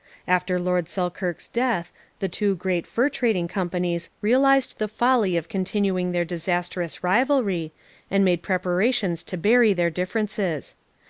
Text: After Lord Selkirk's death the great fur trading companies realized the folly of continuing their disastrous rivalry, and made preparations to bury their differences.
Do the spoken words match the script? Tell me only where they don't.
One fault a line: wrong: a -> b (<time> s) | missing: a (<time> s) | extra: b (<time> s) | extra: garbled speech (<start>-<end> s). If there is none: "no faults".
extra: two (2.3 s)